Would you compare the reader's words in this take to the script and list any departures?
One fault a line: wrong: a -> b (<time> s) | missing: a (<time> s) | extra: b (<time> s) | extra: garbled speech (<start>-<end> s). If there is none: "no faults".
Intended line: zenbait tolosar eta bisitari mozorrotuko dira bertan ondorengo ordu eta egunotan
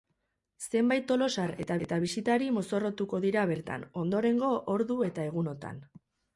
extra: eta (1.9 s)